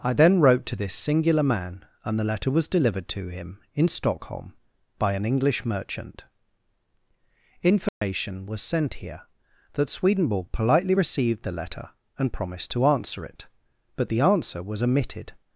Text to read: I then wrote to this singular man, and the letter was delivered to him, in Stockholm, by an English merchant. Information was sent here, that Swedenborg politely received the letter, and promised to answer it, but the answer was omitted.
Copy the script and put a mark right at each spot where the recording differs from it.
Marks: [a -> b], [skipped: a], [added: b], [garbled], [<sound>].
I then wrote to this singular man, and the letter was delivered to him, in Stockholm, by an English merchant. Information [dropout] was sent here, that Swedenborg politely received the letter, and promised to answer it, but the answer was omitted.